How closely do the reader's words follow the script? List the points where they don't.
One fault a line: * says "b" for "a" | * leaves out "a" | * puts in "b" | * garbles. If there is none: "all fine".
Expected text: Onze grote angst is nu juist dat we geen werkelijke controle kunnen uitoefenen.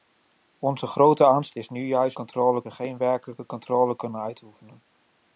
* says "controle" for "dat"